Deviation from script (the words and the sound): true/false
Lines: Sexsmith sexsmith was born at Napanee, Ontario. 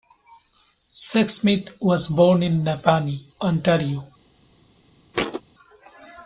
true